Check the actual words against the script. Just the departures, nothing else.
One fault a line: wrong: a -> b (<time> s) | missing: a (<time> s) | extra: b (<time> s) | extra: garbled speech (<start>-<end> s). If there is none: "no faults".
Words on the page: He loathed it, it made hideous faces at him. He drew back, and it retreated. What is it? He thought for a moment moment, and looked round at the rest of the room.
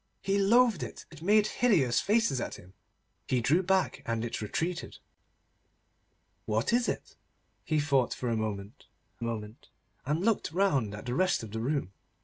no faults